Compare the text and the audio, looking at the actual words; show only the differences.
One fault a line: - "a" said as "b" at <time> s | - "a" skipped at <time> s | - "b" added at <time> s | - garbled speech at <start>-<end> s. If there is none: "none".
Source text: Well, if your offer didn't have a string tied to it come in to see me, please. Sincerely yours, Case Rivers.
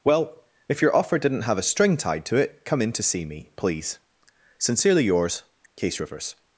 none